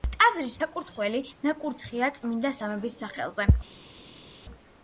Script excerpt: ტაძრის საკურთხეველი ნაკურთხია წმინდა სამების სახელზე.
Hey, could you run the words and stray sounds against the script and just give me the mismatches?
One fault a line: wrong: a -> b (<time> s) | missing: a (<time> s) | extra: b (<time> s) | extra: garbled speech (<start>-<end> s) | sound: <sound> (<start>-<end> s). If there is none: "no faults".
no faults